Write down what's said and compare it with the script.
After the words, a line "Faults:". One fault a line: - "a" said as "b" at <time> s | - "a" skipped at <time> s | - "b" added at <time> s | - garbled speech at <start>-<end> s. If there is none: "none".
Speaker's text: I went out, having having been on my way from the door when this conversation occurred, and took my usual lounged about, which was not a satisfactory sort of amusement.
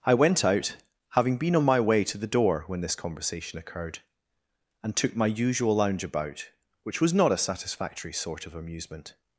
I went out, having been on my way to the door when this conversation occurred, and took my usual lounge about, which was not a satisfactory sort of amusement.
Faults:
- "having" skipped at 1.4 s
- "from" said as "to" at 2.0 s
- "lounged" said as "lounge" at 5.8 s